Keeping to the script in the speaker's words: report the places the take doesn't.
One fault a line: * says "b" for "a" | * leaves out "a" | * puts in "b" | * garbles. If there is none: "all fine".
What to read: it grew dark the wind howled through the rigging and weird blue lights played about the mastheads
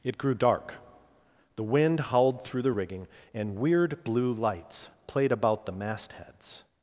all fine